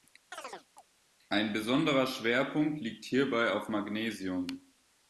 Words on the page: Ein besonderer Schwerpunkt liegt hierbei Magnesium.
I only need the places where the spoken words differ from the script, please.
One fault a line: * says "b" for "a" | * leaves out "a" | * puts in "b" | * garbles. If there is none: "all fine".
* puts in "auf"